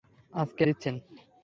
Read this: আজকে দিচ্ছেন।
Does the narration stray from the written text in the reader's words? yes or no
no